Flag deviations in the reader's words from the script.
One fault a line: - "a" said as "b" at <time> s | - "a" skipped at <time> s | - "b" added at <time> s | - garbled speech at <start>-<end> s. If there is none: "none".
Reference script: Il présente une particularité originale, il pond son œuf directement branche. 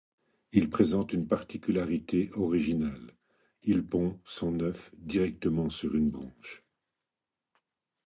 - "sur une" added at 5.7 s